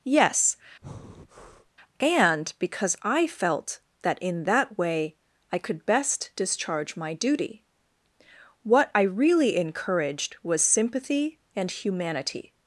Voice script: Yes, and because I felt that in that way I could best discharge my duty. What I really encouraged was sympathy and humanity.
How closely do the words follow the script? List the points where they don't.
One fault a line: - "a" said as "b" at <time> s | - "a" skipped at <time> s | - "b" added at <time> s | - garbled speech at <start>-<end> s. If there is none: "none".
none